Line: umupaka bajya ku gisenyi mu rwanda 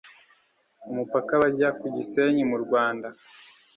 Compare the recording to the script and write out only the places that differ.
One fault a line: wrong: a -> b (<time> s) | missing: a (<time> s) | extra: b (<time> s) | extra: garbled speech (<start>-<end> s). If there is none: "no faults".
no faults